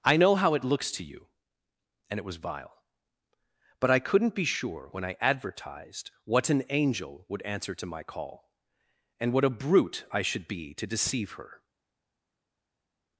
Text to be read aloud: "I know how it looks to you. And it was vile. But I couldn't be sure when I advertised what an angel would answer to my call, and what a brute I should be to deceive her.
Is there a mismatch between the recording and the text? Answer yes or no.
no